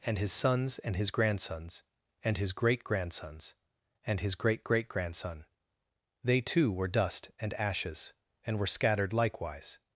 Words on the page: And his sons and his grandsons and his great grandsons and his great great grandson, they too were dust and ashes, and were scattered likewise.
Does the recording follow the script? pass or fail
pass